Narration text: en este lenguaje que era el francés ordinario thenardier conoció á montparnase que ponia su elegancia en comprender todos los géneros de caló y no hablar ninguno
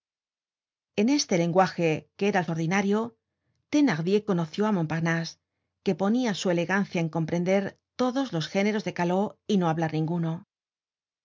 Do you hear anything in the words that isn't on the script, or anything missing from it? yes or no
yes